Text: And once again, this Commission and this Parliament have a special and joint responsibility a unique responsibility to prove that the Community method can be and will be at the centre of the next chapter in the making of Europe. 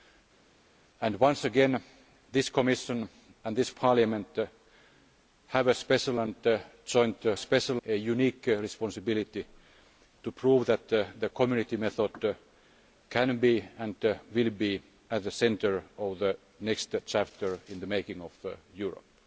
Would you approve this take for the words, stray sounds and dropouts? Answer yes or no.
no